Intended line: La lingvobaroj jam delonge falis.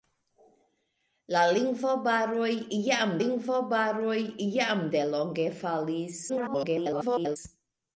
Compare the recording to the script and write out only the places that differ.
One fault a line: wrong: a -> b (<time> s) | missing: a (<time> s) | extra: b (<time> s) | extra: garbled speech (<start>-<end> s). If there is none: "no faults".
extra: lingvobaroj jam (3.2 s)
extra: garbled speech (6.3-7.4 s)